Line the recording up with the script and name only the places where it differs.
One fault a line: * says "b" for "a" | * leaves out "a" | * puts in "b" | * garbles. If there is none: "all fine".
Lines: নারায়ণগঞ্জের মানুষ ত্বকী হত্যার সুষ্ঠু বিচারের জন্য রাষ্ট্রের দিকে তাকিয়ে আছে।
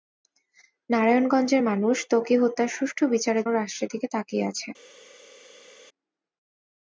* leaves out "জন্য"